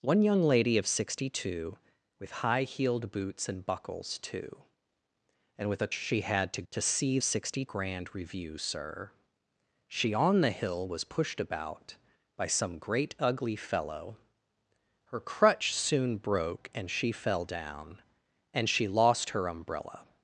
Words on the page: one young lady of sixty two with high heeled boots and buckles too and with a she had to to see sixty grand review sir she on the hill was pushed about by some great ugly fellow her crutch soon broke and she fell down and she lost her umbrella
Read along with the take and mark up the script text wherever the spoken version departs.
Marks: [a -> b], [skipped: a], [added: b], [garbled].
one young lady of sixty two with high heeled boots and buckles too and with a she had to to see sixty grand review sir she on the hill was pushed about by some great ugly fellow her crutch soon broke and she fell down and she lost her umbrella